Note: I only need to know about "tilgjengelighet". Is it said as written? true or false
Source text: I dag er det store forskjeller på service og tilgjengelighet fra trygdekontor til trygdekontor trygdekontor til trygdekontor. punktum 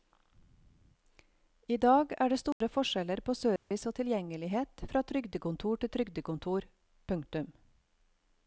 true